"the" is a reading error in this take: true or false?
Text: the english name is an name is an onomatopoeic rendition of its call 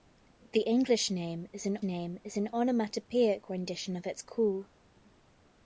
false